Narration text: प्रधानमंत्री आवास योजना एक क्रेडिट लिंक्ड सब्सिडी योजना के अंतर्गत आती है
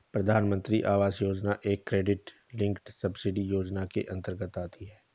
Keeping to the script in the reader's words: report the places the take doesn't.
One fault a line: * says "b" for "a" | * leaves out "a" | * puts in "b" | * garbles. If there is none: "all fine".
all fine